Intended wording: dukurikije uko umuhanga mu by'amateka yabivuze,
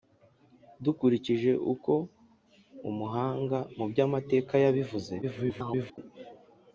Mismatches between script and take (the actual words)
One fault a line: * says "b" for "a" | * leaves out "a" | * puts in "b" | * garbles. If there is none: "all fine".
* garbles